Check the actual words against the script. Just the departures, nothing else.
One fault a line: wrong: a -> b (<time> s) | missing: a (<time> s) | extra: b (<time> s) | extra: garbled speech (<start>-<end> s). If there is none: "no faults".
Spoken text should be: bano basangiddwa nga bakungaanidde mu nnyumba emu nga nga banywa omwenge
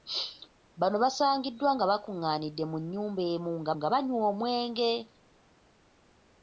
no faults